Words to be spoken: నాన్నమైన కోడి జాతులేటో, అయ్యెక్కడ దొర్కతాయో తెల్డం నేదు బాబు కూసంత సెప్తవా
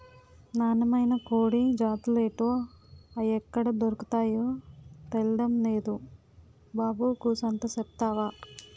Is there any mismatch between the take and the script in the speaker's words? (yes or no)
no